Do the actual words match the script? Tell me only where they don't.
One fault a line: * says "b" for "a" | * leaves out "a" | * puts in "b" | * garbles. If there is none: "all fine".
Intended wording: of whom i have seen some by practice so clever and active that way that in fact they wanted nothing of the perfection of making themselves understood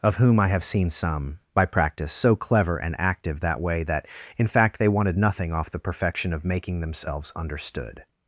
* says "off" for "of"